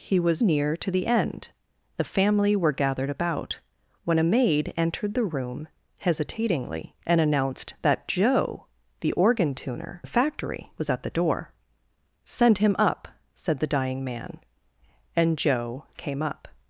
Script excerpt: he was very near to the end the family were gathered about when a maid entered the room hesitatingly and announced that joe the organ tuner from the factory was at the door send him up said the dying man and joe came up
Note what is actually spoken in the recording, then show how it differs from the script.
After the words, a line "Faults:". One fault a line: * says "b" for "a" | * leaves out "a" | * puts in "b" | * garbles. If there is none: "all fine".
he was near to the end the family were gathered about when a maid entered the room hesitatingly and announced that joe the organ tuner the factory was at the door send him up said the dying man and joe came up
Faults:
* leaves out "very"
* leaves out "from"